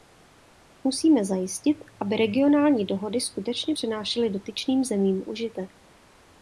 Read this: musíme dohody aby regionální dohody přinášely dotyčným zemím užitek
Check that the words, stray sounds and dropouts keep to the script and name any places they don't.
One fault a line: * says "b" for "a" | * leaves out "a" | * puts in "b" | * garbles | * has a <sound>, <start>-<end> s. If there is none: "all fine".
* says "zajistit" for "dohody"
* puts in "skutečně"